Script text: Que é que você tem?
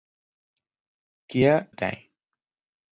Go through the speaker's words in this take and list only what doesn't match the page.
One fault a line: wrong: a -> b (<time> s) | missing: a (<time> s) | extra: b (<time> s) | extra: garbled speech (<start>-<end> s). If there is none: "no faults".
missing: que você (1.7 s)